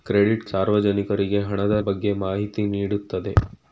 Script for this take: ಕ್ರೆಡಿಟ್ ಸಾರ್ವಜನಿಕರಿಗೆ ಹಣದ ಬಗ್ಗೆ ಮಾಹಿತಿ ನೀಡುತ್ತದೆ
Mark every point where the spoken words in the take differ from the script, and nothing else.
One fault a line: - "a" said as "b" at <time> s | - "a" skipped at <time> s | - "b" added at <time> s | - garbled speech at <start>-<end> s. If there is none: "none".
none